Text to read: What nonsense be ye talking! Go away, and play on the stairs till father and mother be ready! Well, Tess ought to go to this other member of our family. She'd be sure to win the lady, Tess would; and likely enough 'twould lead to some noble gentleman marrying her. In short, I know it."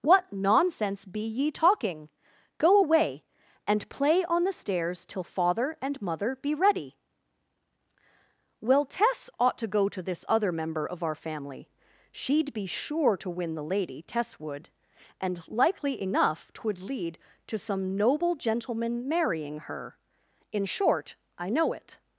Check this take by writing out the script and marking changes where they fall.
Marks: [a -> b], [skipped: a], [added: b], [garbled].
What nonsense be ye talking! Go away, and play on the stairs till father and mother be ready! Well, Tess ought to go to this other member of our family. She'd be sure to win the lady, Tess would; and likely enough 'twould lead to some noble gentleman marrying her. In short, I know it."